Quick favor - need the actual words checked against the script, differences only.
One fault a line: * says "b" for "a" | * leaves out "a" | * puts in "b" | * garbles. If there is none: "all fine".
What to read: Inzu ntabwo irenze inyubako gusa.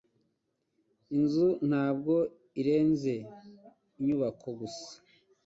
all fine